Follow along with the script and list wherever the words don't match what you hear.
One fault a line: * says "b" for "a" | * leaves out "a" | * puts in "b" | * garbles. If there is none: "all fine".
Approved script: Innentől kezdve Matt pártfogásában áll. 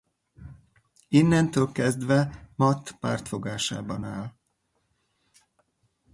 all fine